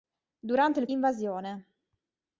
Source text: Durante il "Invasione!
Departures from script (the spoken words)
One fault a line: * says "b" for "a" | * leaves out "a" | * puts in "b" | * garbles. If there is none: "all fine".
all fine